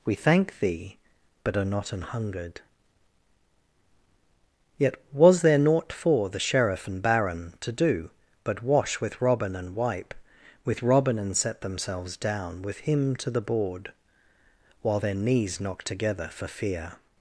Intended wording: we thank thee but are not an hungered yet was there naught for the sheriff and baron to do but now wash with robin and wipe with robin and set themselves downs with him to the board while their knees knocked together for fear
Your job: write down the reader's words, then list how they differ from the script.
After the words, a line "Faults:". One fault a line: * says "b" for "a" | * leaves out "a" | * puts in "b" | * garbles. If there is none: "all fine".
we thank thee but are not an hungered yet was there naught for the sheriff and baron to do but wash with robin and wipe with robin and set themselves down with him to the board while their knees knocked together for fear
Faults:
* leaves out "now"
* says "down" for "downs"